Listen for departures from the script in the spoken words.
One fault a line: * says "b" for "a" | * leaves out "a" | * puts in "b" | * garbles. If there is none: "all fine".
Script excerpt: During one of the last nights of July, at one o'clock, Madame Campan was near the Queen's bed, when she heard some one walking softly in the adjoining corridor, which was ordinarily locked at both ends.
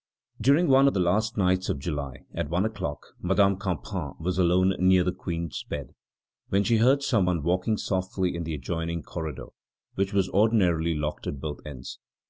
* puts in "alone"